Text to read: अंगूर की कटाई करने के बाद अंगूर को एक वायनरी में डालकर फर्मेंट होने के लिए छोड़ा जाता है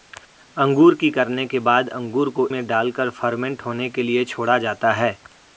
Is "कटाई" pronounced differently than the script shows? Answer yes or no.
yes